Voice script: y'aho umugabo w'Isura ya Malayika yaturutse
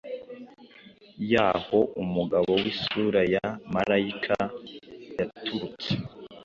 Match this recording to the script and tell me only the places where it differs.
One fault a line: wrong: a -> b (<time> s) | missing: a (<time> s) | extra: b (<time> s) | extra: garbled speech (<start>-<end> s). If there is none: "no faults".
no faults